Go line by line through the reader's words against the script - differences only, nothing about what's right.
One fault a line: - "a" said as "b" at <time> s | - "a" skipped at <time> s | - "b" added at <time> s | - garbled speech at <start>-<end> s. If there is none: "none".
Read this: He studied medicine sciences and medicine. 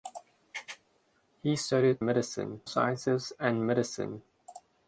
none